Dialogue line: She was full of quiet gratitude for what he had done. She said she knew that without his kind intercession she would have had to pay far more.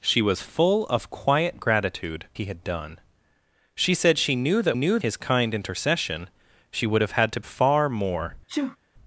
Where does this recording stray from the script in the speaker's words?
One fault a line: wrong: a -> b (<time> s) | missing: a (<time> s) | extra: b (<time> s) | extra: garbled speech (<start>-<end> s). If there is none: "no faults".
missing: for what (2.2 s)
wrong: without -> knew (4.7 s)
missing: pay (7.4 s)